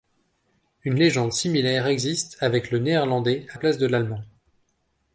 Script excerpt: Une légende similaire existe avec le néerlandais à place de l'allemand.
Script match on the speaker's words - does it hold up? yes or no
yes